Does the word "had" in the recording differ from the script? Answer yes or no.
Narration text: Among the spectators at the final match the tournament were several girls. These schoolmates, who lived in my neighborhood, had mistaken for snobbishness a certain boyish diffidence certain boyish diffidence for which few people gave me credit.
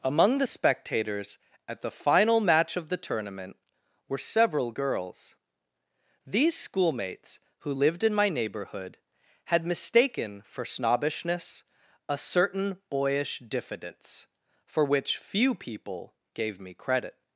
no